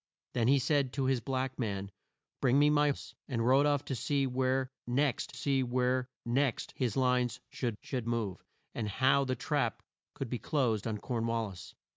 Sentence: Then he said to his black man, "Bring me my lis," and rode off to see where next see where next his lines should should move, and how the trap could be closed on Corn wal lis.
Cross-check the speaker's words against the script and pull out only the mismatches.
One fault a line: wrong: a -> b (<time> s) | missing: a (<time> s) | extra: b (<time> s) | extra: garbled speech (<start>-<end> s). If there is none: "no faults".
no faults